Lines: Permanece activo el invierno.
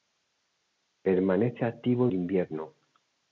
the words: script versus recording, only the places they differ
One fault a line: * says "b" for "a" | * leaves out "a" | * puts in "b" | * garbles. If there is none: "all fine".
all fine